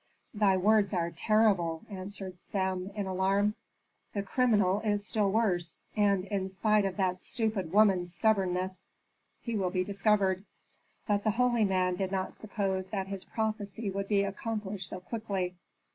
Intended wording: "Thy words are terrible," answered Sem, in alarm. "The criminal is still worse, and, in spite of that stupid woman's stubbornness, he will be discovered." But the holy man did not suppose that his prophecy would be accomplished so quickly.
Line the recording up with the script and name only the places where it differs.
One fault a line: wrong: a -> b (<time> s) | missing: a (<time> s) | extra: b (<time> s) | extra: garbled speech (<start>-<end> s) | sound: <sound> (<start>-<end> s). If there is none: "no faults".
no faults